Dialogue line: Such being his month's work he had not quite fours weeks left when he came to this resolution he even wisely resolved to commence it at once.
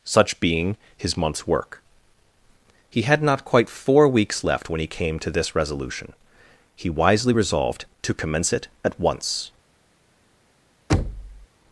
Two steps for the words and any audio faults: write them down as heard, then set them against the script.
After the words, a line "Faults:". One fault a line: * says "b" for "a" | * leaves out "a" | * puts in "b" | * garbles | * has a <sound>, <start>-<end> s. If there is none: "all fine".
Such being his month's work he had not quite four weeks left when he came to this resolution he wisely resolved to commence it at once.
Faults:
* says "four" for "fours"
* leaves out "even"
* has a thud, 10.9-11.5 s